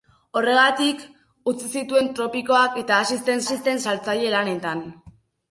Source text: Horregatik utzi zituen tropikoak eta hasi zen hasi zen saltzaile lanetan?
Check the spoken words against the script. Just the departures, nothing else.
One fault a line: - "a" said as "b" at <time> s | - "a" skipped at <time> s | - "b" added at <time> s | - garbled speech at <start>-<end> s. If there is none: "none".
none